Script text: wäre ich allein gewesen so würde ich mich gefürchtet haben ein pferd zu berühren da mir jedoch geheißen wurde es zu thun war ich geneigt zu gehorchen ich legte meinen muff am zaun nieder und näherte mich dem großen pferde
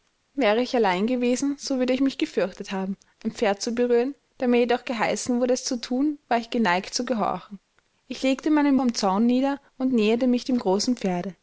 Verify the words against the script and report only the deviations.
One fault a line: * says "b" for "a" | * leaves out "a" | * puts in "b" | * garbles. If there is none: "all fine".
* leaves out "muff"